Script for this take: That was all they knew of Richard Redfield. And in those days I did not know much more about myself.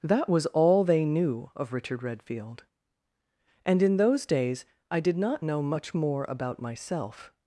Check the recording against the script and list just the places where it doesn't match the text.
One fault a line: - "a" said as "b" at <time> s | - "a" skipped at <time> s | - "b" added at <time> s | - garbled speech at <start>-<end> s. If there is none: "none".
none